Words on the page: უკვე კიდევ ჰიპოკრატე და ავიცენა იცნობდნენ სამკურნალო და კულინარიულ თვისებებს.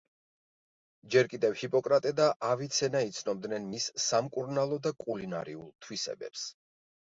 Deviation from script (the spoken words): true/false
true